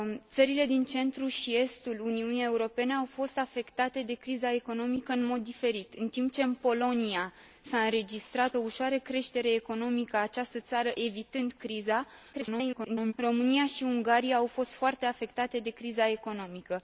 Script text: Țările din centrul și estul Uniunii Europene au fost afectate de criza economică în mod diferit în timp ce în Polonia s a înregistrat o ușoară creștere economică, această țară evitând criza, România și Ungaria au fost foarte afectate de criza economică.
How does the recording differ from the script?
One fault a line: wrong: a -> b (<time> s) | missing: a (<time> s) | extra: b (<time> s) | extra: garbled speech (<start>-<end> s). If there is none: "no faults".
extra: garbled speech (12.3-13.1 s)